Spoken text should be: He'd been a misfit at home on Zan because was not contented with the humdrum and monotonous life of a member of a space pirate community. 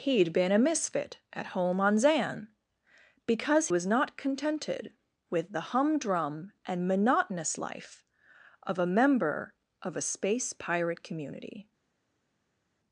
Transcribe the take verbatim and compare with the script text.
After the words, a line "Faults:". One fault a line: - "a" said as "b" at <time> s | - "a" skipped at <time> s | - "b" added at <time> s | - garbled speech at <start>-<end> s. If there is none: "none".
He'd been a misfit at home on Zan because was not contented with the humdrum and monotonous life of a member of a space pirate community.
Faults:
none